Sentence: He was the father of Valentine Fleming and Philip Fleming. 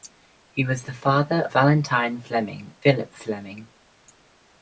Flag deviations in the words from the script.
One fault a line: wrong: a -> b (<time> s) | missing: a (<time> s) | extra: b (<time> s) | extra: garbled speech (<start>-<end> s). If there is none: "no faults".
missing: of (1.5 s)
missing: and (2.7 s)